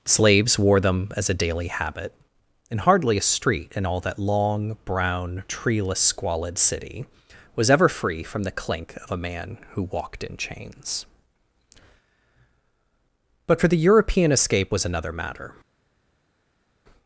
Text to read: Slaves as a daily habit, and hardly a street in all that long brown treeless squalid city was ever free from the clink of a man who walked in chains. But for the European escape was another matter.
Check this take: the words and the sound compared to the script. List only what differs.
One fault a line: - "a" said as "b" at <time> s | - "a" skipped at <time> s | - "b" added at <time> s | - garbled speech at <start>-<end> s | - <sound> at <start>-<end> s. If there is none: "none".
- "wore them" added at 0.6 s